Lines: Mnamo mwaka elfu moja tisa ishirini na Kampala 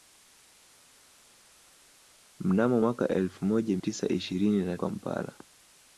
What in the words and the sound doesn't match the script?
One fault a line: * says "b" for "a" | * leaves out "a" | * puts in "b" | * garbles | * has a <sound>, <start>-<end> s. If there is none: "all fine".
all fine